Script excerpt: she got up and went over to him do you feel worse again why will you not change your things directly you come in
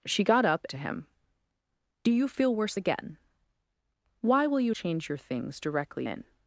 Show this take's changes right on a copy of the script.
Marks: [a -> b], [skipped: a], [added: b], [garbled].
she got up [skipped: and went over] to him do you feel worse again why will you [skipped: not] change your things directly [skipped: you come] in